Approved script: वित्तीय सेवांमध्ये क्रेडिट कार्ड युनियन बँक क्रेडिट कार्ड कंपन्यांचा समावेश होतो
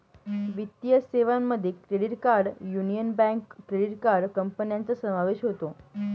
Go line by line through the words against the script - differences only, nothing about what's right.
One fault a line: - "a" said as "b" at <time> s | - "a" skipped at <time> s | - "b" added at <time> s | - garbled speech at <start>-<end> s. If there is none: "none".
none